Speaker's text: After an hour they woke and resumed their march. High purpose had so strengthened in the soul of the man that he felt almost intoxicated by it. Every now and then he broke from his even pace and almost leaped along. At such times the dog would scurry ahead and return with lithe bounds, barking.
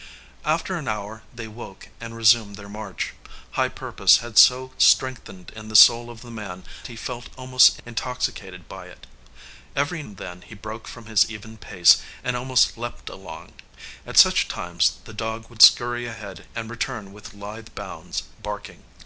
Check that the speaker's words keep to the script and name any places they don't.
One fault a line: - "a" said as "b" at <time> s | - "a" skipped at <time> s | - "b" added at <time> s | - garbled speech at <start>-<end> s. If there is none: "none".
- "that" skipped at 6.6 s
- "now" skipped at 10.0 s